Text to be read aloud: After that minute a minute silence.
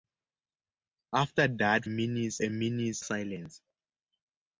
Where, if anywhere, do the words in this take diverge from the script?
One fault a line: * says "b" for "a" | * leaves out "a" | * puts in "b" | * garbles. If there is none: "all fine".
all fine